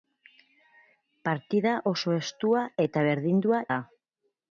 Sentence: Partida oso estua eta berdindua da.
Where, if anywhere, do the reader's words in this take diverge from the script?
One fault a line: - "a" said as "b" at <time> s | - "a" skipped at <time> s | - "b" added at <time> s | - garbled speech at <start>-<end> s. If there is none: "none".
none